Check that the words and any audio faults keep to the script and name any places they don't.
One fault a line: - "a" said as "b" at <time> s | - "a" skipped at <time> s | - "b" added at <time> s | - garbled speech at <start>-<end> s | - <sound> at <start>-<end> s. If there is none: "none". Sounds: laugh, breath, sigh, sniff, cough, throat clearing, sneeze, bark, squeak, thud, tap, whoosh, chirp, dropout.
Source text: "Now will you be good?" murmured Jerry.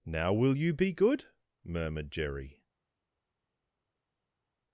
none